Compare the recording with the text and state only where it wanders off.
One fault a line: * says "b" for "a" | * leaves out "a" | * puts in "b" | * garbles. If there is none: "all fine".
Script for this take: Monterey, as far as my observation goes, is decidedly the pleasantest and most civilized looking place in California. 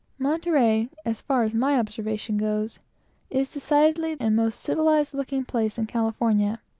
* leaves out "the pleasantest"